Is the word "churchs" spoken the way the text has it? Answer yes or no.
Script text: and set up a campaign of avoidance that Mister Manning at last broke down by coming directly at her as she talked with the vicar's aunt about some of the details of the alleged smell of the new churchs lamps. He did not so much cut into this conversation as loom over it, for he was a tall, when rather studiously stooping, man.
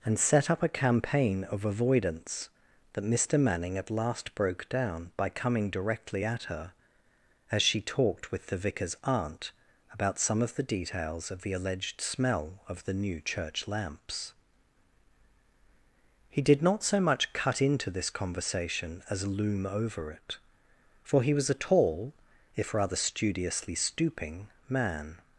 no